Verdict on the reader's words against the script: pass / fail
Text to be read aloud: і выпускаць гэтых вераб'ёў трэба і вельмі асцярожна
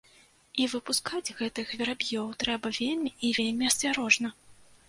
fail